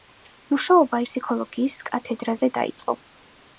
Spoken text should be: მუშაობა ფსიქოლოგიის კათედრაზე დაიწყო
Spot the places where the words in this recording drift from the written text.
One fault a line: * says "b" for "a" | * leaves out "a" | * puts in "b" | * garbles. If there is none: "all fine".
all fine